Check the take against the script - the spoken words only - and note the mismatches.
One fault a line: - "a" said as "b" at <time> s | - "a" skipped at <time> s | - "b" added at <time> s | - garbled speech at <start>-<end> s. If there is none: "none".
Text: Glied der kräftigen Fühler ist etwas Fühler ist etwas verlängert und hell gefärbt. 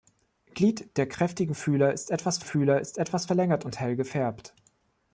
none